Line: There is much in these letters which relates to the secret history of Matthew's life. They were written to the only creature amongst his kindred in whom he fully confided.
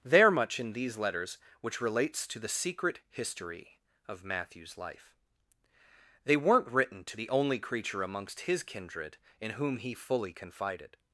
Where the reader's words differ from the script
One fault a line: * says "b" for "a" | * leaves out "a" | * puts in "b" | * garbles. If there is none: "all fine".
* leaves out "is"
* says "weren't" for "were"